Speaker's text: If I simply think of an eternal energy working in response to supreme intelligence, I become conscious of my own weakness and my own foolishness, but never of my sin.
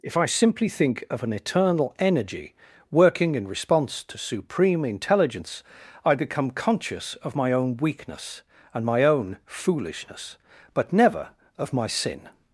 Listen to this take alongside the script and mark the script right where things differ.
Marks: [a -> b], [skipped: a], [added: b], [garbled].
If I simply think of an eternal energy working in response to supreme intelligence, I become conscious of my own weakness and my own foolishness, but never of my sin.